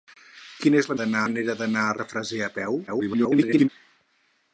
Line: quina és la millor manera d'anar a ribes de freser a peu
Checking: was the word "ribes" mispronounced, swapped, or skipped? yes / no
yes